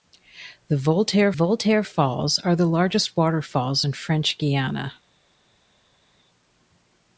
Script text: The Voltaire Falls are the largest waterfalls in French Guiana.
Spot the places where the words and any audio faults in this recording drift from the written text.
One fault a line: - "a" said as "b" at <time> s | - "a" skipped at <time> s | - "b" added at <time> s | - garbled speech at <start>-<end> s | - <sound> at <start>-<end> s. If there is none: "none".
- "Voltaire" added at 1.3 s